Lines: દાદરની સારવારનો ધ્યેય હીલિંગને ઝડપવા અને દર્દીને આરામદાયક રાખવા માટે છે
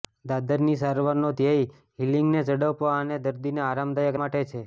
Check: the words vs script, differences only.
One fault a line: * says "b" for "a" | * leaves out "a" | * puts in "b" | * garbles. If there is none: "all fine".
* leaves out "રાખવા"